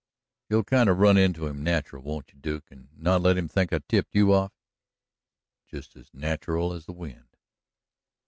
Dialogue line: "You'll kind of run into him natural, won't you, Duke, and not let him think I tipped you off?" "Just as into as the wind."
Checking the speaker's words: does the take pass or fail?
fail